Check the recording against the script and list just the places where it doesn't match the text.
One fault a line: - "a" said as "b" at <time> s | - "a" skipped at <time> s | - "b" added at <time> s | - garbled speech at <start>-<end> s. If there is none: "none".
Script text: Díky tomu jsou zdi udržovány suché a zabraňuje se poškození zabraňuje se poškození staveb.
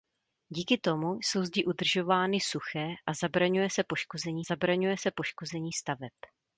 none